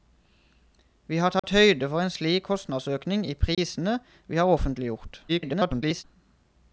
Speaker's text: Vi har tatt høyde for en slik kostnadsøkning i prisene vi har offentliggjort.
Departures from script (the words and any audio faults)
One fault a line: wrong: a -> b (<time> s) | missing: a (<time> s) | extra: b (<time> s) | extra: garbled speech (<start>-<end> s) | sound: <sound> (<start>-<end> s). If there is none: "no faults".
sound: dropout (1.4-1.4 s)
sound: dropout (3.5-3.6 s)
extra: garbled speech (5.3-6.0 s)